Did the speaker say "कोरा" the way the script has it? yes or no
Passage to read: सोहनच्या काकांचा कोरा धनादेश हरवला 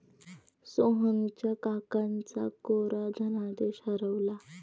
yes